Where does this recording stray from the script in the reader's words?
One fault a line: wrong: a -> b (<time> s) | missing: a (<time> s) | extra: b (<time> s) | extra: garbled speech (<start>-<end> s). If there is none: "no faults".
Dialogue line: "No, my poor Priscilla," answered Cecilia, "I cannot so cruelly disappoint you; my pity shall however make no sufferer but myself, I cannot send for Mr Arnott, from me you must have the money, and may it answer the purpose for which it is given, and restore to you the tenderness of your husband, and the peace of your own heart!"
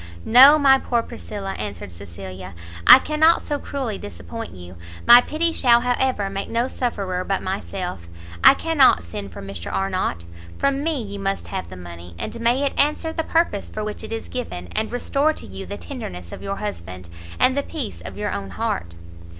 no faults